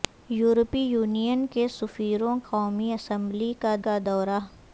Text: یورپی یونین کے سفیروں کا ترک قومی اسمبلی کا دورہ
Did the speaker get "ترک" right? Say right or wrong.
wrong